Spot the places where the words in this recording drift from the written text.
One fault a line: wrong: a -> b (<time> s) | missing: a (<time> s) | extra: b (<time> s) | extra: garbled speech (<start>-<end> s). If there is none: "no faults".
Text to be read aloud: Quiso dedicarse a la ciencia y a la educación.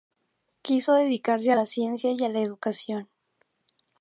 no faults